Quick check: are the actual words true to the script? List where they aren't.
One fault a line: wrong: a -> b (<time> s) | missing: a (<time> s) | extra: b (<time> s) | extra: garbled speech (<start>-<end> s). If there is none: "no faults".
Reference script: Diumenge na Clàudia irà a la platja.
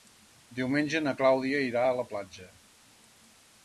no faults